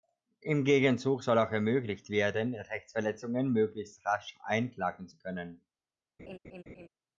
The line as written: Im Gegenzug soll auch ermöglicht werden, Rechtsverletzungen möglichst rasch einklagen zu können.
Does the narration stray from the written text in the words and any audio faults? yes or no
yes